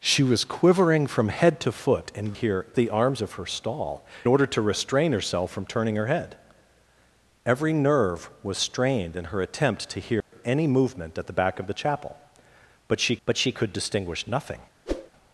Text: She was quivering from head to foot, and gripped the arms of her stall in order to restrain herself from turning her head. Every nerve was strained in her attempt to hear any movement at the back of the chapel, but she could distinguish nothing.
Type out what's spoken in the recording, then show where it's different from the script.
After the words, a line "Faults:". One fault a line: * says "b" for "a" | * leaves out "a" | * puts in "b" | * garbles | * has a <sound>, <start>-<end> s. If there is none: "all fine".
She was quivering from head to foot, and hear the arms of her stall order to restrain herself from turning her head. Every nerve was strained in her attempt to hear any movement at the back of the chapel, but she but she could distinguish nothing.
Faults:
* says "hear" for "gripped"
* leaves out "in"
* has a dropout, 10.2-10.3 s
* puts in "but she"
* has a whoosh, 14.9-15.1 s